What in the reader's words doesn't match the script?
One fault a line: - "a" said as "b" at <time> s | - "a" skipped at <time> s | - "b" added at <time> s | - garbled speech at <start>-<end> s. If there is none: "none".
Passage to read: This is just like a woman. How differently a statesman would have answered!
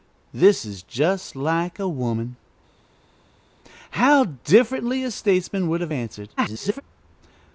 - garbled speech at 6.4-6.8 s